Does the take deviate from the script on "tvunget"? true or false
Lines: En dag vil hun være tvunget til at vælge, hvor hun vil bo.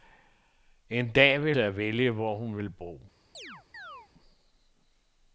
true